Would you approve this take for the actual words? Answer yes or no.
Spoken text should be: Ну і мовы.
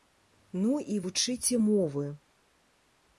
no